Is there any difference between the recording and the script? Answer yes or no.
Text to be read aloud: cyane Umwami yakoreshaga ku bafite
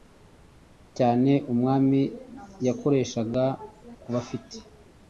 no